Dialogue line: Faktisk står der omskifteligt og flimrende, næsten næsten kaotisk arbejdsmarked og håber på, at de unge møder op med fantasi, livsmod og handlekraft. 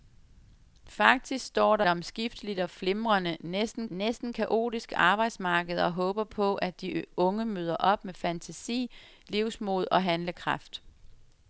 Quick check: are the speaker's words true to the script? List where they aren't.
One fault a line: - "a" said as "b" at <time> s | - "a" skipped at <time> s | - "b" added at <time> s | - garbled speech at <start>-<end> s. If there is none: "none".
none